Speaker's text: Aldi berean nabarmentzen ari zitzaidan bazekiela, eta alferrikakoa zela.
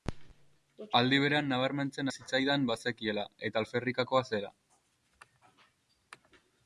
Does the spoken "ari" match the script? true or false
false